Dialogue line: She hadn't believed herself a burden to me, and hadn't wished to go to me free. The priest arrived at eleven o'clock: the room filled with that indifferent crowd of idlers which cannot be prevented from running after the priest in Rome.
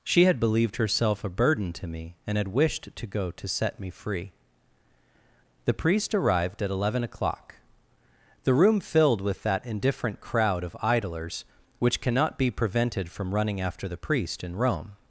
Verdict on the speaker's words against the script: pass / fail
fail